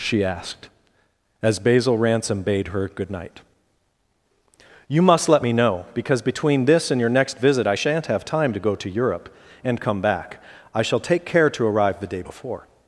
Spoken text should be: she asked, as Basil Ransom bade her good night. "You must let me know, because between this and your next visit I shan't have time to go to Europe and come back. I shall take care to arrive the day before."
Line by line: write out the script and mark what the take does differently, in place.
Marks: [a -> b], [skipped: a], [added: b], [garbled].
she asked, as Basil Ransom bade her good night. "You must let me know, because between this and your next visit I shan't have time to go to Europe and come back. I shall take care to arrive the day before."